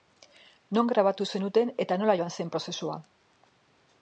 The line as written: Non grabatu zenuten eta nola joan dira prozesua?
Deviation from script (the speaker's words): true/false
true